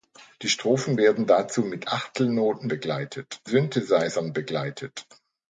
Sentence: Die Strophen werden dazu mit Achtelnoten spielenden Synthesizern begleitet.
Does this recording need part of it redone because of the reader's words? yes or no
yes